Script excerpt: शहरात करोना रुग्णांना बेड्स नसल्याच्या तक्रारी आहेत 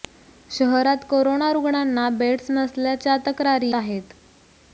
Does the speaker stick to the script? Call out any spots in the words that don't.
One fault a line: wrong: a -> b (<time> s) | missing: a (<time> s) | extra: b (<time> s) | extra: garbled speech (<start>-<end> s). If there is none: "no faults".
no faults